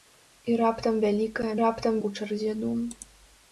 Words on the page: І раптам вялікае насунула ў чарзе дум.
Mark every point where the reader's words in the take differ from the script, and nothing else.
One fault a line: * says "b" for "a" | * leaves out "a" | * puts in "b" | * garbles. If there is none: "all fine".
* says "раптам" for "насунула"